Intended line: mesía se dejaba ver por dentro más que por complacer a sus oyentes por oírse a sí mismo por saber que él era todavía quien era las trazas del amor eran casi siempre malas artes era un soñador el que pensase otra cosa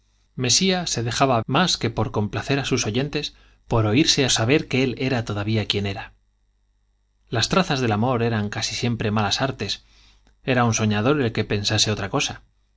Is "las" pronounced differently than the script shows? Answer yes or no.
no